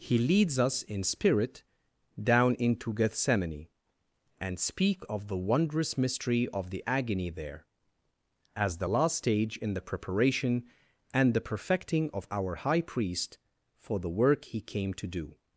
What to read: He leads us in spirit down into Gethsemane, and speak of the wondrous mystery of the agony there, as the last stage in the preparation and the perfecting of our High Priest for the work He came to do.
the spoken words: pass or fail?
pass